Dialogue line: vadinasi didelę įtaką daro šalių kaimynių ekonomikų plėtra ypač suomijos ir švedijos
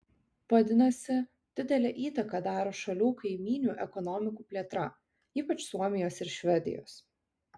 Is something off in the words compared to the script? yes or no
no